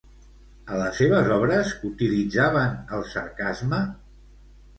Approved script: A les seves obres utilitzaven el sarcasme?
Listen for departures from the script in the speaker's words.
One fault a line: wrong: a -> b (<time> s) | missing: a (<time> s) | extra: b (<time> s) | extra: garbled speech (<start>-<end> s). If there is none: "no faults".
no faults